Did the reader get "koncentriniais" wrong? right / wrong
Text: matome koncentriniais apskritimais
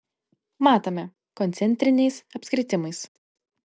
right